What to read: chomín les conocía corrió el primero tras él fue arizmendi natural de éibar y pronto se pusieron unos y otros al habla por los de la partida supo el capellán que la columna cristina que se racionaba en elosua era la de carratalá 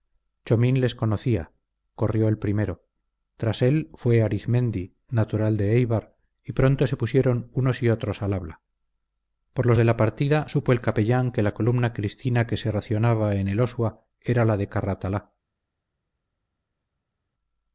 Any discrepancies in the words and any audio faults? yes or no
no